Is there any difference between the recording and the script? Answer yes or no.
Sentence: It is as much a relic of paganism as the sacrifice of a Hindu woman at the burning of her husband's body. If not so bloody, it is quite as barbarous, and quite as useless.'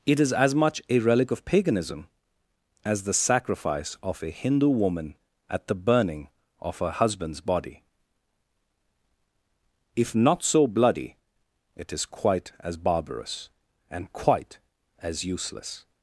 no